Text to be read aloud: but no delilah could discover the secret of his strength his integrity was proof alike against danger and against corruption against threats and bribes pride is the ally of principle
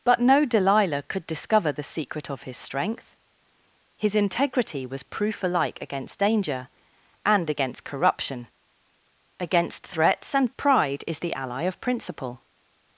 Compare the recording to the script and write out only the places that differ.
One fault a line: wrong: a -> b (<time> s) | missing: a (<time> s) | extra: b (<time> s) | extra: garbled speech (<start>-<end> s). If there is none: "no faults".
missing: bribes (10.5 s)